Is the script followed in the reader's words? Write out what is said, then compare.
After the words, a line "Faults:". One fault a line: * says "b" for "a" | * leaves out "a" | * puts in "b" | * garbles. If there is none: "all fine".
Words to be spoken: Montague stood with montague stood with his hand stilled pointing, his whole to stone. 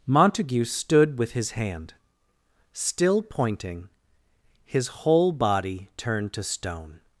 Montague stood with his hand still pointing, his whole body turned to stone.
Faults:
* leaves out "montague stood with"
* says "still" for "stilled"
* puts in "body turned"